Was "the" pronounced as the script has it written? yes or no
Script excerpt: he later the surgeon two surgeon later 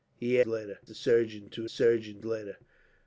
yes